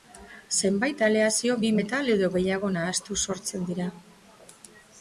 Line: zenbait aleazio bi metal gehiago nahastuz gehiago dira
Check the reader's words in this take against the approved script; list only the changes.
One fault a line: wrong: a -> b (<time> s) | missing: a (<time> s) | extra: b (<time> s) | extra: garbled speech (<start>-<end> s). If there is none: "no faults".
extra: edo (2.2 s)
wrong: gehiago -> sortzen (3.3 s)